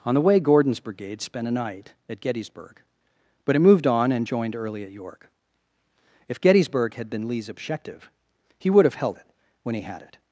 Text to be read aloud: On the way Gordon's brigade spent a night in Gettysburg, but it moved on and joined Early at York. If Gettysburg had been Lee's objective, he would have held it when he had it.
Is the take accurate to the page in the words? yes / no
no